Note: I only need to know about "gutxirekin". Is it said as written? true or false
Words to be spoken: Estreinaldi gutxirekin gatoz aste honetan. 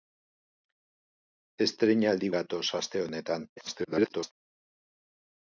false